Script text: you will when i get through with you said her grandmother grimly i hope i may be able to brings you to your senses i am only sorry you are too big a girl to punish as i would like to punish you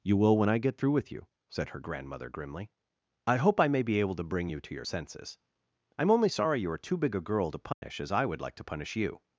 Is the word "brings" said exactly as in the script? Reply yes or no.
no